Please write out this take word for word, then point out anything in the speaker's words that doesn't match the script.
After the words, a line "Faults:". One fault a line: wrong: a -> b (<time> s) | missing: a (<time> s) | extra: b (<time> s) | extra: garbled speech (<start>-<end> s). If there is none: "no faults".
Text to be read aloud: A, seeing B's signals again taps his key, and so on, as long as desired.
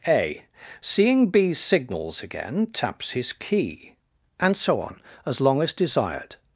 A, seeing B's signals again taps his key, and so on, as long as desired.
Faults:
no faults